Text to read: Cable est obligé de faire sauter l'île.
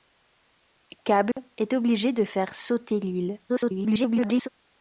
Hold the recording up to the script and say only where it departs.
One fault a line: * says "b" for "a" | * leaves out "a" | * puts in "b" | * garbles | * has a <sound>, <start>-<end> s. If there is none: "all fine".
* has a dropout, 1.3-1.4 s
* garbles